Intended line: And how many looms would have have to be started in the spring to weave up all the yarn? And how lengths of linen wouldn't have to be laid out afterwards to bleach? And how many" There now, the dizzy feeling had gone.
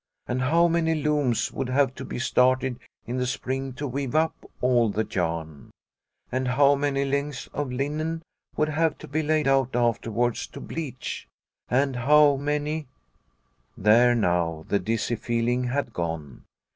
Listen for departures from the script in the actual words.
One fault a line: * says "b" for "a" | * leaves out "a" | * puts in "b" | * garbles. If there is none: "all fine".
* leaves out "have"
* puts in "many"
* says "would" for "wouldn't"